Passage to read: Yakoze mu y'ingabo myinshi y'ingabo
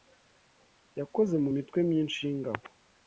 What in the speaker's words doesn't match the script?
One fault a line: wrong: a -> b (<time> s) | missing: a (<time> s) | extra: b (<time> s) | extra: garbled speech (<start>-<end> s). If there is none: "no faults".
wrong: y'ingabo -> mitwe (1.5 s)